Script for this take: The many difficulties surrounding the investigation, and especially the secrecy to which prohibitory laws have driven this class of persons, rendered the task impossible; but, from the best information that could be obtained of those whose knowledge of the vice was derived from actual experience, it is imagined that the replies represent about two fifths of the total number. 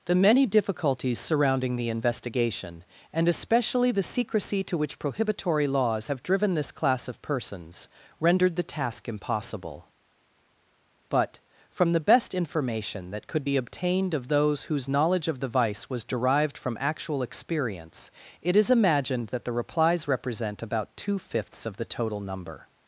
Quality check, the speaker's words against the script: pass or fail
pass